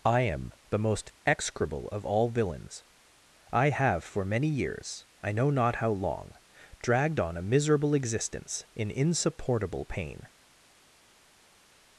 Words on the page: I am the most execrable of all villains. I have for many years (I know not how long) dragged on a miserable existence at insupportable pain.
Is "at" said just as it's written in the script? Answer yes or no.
no